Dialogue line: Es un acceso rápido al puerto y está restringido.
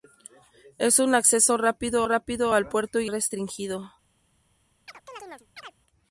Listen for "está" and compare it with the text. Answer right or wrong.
wrong